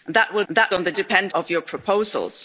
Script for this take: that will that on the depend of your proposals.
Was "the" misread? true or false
false